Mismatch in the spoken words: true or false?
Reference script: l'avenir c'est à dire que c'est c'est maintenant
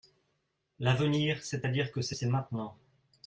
false